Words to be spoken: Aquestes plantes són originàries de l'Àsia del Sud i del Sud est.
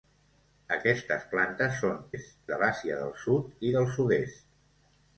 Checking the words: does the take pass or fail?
fail